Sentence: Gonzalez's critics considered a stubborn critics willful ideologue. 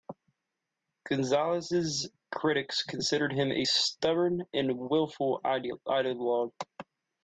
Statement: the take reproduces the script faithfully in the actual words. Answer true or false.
false